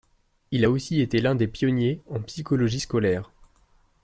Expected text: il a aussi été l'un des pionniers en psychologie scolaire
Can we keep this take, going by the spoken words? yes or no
yes